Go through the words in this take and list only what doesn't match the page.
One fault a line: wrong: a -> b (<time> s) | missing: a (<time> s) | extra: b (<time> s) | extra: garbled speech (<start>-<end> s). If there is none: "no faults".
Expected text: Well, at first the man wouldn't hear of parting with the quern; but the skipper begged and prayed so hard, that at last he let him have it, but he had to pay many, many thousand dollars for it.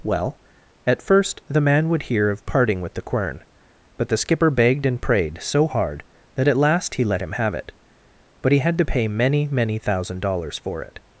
wrong: wouldn't -> would (1.9 s)